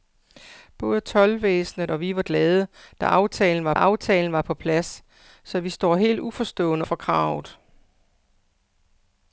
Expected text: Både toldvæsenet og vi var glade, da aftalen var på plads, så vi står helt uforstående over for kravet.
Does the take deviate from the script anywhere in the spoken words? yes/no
yes